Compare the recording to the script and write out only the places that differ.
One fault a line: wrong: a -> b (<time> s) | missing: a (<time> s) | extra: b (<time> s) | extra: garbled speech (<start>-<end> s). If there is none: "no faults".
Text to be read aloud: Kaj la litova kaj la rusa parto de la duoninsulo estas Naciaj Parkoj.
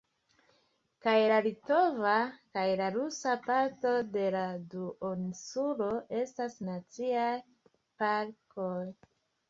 no faults